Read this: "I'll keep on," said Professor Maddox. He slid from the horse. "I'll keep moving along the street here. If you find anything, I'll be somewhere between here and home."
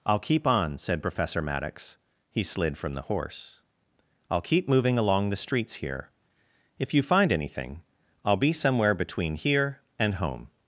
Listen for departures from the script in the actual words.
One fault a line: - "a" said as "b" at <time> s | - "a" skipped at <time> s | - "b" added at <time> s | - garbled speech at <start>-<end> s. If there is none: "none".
- "street" said as "streets" at 5.3 s